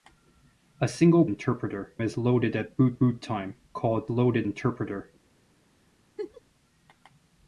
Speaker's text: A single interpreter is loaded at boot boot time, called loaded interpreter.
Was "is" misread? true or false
false